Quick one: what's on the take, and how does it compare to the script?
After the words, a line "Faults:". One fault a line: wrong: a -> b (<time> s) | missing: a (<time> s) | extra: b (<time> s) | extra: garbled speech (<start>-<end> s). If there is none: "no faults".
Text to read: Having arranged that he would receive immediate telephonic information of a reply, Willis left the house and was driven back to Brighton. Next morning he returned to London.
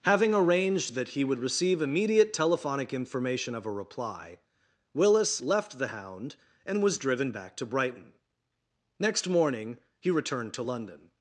Having arranged that he would receive immediate telephonic information of a reply, Willis left the hound and was driven back to Brighton. Next morning he returned to London.
Faults:
wrong: house -> hound (5.9 s)